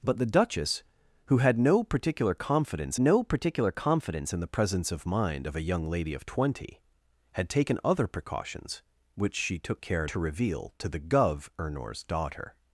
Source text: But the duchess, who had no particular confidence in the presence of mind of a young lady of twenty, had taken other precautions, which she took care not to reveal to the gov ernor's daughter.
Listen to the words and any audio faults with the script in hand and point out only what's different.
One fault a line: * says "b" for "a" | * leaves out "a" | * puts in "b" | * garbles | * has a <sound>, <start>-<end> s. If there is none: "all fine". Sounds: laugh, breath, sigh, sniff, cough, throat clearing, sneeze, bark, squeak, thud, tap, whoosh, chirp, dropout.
* puts in "no particular confidence"
* leaves out "not"